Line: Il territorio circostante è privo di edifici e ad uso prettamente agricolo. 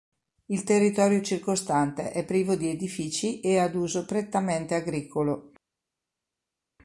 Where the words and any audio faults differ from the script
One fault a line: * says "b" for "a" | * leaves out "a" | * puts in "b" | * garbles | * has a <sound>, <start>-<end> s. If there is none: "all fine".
all fine